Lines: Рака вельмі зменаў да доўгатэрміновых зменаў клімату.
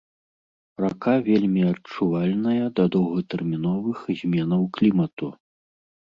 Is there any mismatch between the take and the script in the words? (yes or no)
yes